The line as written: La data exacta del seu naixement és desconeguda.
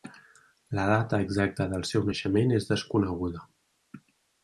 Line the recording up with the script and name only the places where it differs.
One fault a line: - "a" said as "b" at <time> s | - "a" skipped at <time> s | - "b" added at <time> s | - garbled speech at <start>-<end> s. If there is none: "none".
none